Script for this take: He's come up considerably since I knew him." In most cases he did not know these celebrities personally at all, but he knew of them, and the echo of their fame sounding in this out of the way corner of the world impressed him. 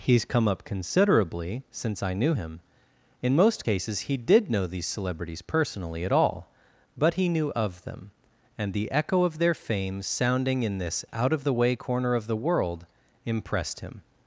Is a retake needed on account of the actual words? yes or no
yes